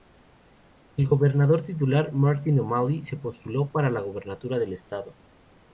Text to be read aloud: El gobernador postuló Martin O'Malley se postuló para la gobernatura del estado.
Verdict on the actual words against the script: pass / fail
fail